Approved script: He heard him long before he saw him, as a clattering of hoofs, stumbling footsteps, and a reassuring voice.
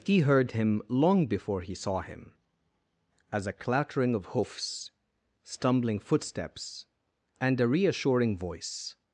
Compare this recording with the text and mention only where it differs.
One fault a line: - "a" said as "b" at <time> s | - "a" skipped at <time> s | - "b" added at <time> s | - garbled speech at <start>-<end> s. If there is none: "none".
none